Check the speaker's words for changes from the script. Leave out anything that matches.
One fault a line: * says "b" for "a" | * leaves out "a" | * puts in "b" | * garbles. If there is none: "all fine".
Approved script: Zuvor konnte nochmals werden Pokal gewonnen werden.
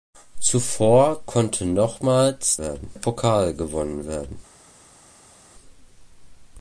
all fine